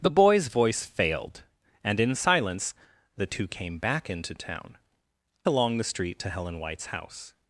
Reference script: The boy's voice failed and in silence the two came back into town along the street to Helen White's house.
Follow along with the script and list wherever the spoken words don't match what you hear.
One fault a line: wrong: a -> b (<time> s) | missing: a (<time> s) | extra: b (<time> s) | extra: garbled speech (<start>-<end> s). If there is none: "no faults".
no faults